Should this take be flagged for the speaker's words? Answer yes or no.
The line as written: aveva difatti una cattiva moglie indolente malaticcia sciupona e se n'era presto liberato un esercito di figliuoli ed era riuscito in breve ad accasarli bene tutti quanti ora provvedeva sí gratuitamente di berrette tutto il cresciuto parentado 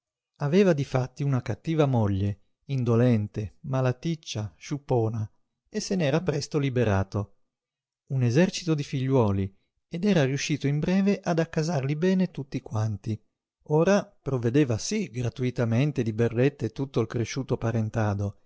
no